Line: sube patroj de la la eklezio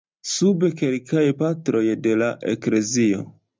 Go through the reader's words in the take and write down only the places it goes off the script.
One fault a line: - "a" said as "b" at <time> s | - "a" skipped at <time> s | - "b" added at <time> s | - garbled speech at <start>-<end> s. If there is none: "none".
- "kelkaj" added at 0.8 s
- "la" skipped at 2.3 s